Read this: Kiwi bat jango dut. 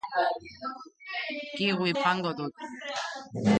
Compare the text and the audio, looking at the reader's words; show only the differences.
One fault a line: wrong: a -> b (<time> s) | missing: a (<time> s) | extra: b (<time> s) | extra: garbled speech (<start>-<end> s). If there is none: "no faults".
missing: bat (1.9 s)